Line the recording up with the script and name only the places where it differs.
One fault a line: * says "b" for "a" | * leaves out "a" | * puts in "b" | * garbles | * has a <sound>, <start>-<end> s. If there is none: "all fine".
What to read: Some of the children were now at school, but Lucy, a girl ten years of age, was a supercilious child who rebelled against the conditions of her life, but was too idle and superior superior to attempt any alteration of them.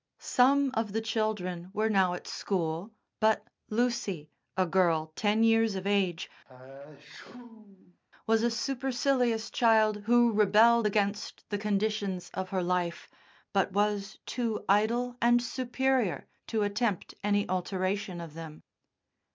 * has a sneeze, 6.4-8.0 s
* leaves out "superior"